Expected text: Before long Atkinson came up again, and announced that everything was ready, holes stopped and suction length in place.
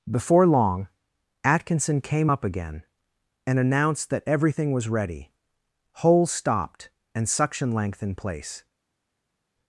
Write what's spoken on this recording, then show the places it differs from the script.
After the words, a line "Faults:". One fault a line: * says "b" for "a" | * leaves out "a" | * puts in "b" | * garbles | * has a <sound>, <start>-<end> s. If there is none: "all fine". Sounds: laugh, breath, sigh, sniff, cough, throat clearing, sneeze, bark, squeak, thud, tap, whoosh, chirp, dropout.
Before long Atkinson came up again, and announced that everything was ready, holes stopped and suction length in place.
Faults:
all fine